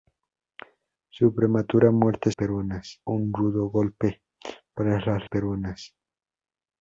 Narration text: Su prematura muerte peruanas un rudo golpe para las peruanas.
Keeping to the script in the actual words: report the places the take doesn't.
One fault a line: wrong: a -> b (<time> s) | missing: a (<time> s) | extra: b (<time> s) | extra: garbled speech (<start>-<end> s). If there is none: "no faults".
no faults